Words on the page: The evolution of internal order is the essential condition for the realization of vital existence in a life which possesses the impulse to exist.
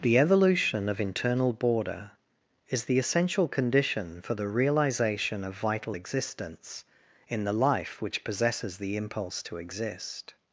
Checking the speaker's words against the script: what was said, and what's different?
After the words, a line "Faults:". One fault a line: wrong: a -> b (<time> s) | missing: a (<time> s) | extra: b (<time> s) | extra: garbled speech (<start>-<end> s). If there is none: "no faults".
The evolution of internal border is the essential condition for the realization of vital existence in the life which possesses the impulse to exist.
Faults:
wrong: order -> border (1.5 s)
wrong: a -> the (7.4 s)